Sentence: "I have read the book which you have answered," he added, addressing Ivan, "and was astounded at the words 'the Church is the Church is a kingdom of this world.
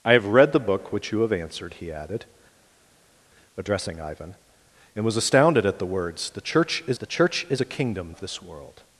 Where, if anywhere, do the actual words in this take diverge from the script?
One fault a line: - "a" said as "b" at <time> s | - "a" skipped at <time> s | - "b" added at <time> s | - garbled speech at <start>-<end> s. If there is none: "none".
none